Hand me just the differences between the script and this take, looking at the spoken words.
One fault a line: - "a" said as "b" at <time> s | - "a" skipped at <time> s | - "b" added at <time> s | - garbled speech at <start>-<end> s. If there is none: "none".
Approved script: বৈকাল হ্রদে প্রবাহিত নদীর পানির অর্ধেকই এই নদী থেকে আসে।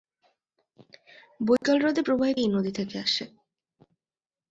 - "নদীর পানির অর্ধেকই" skipped at 2.4 s